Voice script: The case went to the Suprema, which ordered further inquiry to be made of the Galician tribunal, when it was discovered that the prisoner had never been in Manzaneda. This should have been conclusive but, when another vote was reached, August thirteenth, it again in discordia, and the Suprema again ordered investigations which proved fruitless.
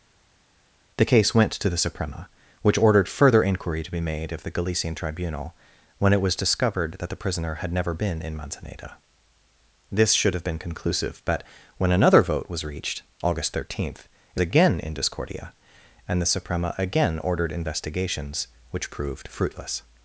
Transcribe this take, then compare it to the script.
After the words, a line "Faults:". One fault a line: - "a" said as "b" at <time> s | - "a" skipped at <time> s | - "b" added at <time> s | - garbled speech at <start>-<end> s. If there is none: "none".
The case went to the Suprema, which ordered further inquiry to be made of the Galician tribunal, when it was discovered that the prisoner had never been in Manzaneda. This should have been conclusive but, when another vote was reached, August thirteenth, it again in discordia, and the Suprema again ordered investigations which proved fruitless.
Faults:
none